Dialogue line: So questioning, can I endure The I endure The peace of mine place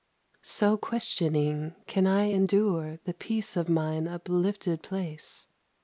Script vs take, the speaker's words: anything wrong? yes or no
yes